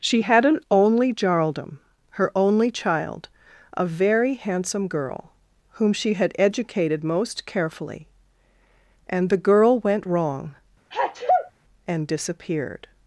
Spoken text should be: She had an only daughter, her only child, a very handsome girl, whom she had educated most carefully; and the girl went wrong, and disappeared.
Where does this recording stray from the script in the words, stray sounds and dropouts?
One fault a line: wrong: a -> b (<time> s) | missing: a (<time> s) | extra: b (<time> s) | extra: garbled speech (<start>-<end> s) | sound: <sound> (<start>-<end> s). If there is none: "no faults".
wrong: daughter -> jarldom (1.1 s)
sound: sneeze (10.9-11.5 s)